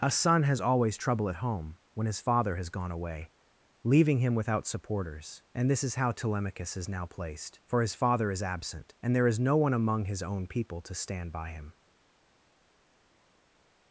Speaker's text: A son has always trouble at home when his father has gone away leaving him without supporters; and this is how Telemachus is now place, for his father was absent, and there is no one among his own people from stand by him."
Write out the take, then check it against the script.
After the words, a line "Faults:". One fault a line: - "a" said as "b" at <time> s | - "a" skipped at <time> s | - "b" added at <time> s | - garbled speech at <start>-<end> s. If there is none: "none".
A son has always trouble at home when his father has gone away leaving him without supporters; and this is how Telemachus is now placed, for his father is absent, and there is no one among his own people to stand by him."
Faults:
- "place" said as "placed" at 7.0 s
- "was" said as "is" at 8.3 s
- "from" said as "to" at 10.8 s